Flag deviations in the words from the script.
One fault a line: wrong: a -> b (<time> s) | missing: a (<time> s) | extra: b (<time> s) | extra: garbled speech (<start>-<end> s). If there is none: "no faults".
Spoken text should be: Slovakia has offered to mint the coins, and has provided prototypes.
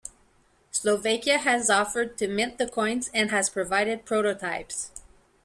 no faults